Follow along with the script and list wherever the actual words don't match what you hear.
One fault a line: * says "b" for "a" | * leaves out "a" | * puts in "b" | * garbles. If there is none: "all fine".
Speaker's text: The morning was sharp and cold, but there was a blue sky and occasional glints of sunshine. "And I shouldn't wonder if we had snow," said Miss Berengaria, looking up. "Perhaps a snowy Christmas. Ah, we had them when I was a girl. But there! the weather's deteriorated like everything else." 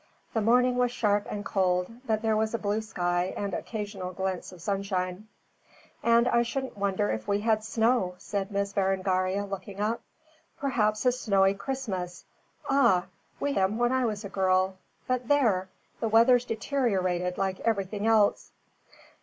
* leaves out "had"